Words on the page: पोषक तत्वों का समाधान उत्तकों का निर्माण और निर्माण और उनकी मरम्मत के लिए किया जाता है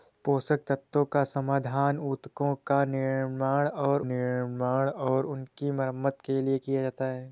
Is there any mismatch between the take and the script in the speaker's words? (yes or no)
no